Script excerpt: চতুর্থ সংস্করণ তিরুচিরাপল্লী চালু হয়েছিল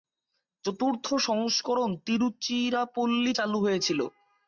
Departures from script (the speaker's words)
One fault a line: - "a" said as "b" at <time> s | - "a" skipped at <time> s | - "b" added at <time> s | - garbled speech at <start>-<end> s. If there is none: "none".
none